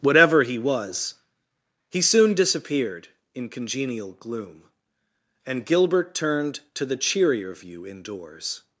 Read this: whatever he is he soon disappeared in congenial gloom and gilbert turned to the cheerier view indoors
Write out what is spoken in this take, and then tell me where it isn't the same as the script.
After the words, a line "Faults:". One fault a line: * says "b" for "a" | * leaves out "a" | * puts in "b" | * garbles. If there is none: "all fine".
whatever he was he soon disappeared in congenial gloom and gilbert turned to the cheerier view indoors
Faults:
* says "was" for "is"